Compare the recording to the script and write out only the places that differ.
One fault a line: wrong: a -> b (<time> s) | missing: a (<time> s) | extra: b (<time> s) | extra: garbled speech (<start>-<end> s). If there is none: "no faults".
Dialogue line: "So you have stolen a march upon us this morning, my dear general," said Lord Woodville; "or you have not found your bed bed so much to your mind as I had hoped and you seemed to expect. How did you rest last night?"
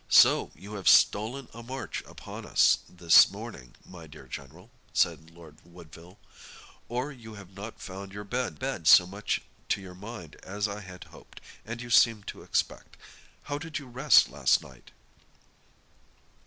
no faults